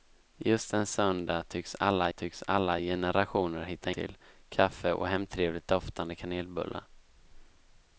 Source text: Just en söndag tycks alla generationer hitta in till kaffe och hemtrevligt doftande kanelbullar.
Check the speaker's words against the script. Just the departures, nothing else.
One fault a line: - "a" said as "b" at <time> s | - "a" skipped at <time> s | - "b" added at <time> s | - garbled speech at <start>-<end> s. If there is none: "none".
- "tycks alla" added at 2.1 s
- "in" skipped at 3.9 s